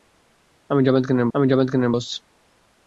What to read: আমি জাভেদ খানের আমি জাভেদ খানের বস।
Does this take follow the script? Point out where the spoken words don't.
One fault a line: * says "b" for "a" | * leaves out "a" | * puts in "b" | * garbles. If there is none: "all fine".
all fine